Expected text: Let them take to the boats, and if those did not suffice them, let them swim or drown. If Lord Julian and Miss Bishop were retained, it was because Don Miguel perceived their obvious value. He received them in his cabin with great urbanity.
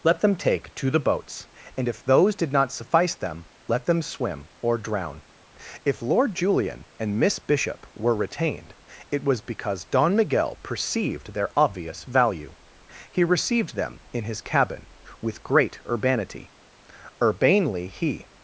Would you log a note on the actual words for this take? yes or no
yes